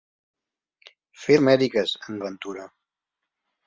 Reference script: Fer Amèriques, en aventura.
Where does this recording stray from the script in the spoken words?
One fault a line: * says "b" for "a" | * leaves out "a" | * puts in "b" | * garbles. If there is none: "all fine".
all fine